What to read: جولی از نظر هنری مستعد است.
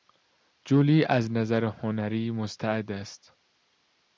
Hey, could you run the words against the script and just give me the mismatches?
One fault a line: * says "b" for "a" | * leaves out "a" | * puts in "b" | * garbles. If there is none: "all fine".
all fine